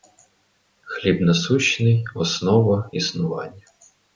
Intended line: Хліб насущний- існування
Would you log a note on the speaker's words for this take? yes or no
yes